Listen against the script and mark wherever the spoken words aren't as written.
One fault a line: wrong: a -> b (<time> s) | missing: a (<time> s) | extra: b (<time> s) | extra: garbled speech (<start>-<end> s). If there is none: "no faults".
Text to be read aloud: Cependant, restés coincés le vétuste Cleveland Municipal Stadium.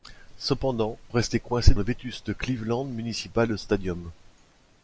no faults